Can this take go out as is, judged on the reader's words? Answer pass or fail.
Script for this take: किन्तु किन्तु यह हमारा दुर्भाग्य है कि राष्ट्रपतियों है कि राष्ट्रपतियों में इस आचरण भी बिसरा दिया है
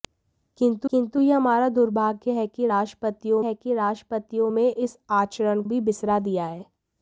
pass